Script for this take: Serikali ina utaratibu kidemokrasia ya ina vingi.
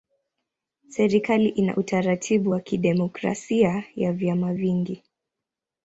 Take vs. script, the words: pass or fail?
fail